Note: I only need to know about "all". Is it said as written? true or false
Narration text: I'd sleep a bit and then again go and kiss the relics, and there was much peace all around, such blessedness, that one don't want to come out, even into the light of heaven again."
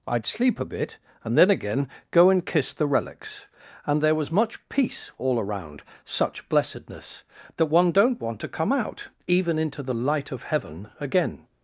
true